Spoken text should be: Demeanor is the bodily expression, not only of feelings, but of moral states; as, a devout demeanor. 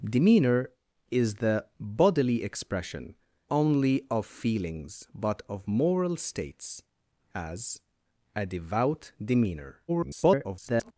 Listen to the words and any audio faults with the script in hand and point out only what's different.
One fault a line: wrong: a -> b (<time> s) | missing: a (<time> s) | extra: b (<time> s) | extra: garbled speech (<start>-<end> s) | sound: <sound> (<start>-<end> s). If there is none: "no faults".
missing: not (3.1 s)
extra: garbled speech (9.9-10.9 s)